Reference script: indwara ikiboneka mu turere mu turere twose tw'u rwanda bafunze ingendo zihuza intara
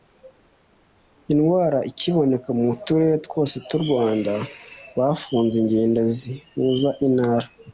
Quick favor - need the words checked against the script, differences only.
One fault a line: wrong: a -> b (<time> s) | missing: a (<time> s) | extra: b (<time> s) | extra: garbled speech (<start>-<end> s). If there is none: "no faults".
missing: mu turere (3.1 s)